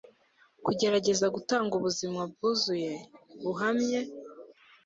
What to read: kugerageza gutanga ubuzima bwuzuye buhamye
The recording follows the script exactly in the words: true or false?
true